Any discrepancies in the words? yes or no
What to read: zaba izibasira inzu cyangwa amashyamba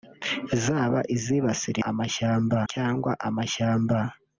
yes